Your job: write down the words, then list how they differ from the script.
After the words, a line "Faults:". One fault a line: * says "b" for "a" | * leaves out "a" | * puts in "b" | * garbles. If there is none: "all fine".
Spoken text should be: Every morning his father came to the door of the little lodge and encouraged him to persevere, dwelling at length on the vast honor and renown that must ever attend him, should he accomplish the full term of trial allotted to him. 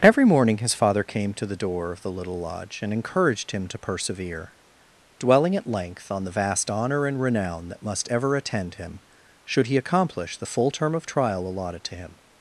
Every morning his father came to the door of the little lodge and encouraged him to persevere, dwelling at length on the vast honor and renown that must ever attend him, should he accomplish the full term of trial allotted to him.
Faults:
all fine